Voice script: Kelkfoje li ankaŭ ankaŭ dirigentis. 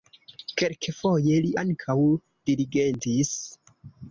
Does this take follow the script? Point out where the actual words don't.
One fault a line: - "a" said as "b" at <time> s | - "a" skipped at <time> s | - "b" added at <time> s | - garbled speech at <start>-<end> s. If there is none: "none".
- "ankaŭ" skipped at 2.0 s